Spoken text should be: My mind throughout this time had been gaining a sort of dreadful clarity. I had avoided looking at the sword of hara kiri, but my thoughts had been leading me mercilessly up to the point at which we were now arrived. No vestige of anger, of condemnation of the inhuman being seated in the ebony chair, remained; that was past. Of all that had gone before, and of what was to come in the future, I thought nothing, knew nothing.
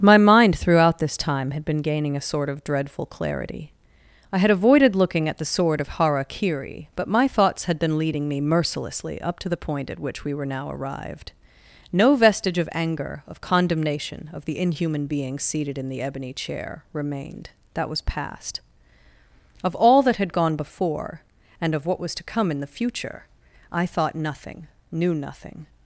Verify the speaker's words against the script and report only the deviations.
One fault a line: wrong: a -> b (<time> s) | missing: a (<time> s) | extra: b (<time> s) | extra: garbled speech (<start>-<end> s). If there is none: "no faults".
no faults